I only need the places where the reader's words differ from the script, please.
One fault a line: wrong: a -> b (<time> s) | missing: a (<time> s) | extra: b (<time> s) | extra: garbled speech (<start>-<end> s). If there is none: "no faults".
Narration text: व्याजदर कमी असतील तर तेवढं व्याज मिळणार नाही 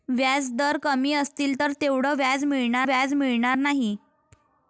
extra: व्याज मिळणार (2.8 s)